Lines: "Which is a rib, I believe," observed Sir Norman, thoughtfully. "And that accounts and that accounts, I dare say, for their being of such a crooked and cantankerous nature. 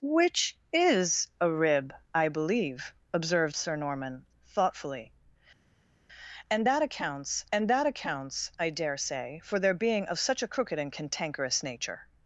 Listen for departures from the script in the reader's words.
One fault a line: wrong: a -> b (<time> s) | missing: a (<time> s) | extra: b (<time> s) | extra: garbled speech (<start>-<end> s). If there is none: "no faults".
no faults